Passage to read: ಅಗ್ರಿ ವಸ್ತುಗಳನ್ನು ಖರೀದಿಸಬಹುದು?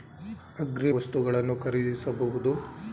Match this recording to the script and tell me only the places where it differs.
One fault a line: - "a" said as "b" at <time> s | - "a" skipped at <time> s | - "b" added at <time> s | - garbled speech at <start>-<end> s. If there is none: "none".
none